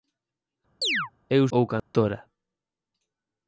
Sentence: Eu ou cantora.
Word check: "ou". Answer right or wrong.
right